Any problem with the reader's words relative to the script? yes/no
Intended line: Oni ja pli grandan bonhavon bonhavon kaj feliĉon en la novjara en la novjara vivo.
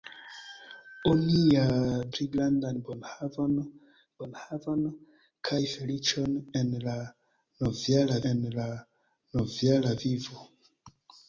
no